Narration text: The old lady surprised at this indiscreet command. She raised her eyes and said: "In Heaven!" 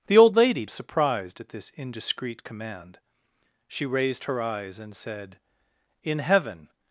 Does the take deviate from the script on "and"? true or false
false